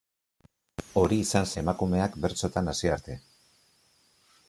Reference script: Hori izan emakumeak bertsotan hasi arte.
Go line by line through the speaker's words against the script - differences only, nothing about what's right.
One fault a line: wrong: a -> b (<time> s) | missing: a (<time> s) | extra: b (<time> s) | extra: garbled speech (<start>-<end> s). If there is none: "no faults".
no faults